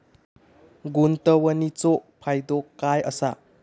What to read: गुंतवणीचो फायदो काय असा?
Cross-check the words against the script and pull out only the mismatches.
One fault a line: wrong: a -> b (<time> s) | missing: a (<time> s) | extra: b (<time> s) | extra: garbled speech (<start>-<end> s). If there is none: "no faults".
no faults